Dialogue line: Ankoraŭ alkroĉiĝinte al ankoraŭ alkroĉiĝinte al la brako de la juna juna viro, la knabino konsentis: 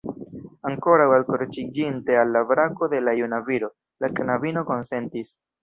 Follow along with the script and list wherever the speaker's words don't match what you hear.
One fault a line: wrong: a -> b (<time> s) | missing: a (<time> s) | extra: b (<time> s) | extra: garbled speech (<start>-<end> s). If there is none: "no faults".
missing: ankoraŭ alkroĉiĝinte al (2.4 s)
missing: juna (3.4 s)